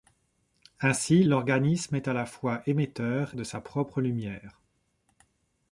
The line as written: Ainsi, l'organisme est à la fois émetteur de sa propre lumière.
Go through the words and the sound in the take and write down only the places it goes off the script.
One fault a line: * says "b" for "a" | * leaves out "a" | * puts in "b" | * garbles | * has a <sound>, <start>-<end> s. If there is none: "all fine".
all fine